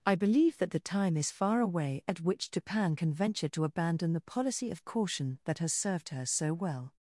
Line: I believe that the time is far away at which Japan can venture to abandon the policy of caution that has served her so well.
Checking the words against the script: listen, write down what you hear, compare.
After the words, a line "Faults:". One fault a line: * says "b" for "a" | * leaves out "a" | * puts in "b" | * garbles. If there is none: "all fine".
I believe that the time is far away at which Japan can venture to abandon the policy of caution that has served her so well.
Faults:
all fine